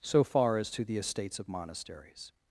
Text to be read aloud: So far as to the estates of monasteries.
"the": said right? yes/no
yes